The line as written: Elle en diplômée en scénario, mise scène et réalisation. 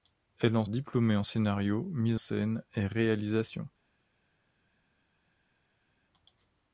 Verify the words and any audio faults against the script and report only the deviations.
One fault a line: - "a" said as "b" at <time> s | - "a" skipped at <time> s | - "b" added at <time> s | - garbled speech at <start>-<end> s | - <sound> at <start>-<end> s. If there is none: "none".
none